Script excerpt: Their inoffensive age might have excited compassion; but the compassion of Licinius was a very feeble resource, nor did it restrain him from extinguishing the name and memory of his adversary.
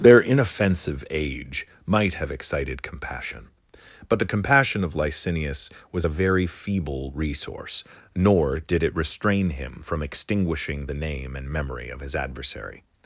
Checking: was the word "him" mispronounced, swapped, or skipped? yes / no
no